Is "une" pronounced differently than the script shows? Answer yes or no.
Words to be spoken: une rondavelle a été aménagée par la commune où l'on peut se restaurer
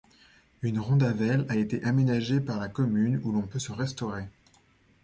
no